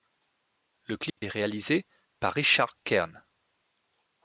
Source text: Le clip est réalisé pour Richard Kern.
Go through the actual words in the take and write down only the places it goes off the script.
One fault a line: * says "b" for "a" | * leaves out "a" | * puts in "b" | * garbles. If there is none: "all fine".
* says "par" for "pour"